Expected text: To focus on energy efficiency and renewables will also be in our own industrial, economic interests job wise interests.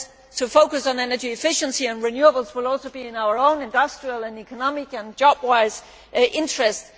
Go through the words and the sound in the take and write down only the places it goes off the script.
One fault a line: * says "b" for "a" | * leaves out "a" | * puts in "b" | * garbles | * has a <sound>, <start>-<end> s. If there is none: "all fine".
* says "and" for "interests"